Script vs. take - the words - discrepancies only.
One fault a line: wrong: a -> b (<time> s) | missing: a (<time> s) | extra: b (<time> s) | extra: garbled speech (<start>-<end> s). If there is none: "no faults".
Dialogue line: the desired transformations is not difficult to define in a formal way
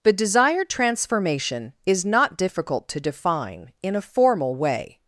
wrong: transformations -> transformation (0.7 s)